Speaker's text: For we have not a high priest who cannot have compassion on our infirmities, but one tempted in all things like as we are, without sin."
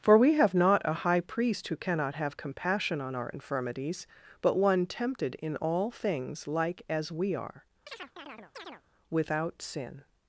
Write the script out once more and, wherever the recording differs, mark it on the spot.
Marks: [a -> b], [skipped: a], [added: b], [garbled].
For we have not a high priest who cannot have compassion on our infirmities, but one tempted in all things like as we are, without sin."